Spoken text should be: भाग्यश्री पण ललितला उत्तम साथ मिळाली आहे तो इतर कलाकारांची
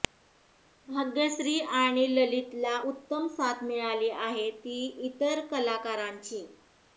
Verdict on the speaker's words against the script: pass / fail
fail